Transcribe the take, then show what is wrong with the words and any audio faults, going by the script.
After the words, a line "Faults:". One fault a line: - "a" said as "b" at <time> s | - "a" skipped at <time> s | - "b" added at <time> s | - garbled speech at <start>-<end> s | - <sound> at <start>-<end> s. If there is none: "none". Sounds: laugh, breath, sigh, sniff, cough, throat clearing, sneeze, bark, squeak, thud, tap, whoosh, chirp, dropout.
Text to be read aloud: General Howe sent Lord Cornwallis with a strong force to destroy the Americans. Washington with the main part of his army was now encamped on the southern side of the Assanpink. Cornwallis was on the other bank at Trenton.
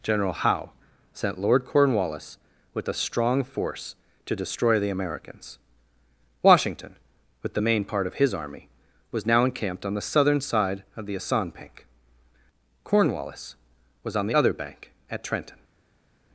General Howe sent Lord Cornwallis with a strong force to destroy the Americans. Washington with the main part of his army was now encamped on the southern side of the Assanpink. Cornwallis was on the other bank at Trenton.
Faults:
none